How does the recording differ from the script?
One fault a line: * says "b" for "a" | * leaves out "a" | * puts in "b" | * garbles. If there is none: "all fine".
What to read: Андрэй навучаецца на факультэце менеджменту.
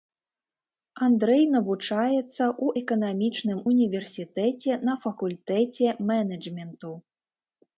* puts in "ў эканамічным універсітэце"